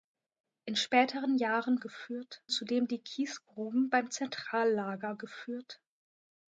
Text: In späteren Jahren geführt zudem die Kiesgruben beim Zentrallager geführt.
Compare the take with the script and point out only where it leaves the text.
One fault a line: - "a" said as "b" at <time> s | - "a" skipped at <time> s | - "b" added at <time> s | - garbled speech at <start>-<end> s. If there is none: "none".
none